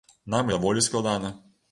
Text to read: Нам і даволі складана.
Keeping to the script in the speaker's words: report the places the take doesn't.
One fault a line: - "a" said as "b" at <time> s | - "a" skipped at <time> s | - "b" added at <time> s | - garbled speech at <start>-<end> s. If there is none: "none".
none